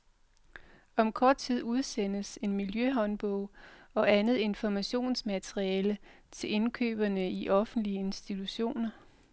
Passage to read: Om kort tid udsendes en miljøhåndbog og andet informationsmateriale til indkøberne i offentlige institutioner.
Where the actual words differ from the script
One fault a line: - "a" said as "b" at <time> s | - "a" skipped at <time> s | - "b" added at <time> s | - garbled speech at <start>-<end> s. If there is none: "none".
none